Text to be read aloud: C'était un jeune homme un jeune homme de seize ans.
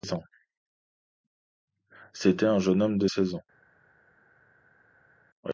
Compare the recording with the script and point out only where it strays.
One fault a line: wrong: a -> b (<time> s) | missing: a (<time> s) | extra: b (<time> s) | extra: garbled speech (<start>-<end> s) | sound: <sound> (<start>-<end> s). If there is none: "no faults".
missing: un jeune homme (3.0 s)